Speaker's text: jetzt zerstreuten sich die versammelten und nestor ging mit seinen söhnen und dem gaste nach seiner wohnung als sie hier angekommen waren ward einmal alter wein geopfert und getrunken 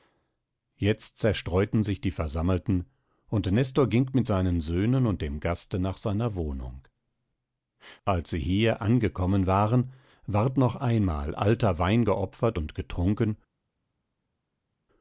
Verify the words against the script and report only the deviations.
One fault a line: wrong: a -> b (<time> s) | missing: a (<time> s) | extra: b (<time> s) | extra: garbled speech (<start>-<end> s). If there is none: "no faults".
extra: noch (10.6 s)